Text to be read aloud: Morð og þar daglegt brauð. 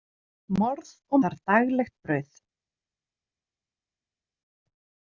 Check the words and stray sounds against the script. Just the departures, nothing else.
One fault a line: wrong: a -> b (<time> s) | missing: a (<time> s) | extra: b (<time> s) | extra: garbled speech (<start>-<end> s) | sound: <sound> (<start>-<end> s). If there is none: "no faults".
no faults